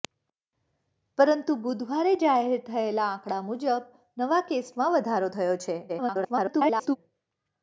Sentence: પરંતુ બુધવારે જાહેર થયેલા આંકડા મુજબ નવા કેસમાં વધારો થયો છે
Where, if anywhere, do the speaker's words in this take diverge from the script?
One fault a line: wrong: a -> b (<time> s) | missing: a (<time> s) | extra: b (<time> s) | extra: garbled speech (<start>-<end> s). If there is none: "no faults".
extra: garbled speech (5.9-7.0 s)